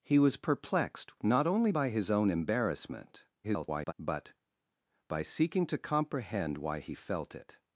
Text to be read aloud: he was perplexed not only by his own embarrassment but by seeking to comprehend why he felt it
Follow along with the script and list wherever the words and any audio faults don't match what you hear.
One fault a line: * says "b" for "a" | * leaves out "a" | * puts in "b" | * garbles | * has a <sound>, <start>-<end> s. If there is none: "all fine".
* garbles